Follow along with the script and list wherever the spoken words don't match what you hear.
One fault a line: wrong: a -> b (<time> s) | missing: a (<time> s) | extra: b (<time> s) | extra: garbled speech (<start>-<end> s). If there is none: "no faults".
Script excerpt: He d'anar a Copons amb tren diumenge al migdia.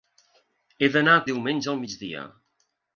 missing: Copons amb tren (1.2 s)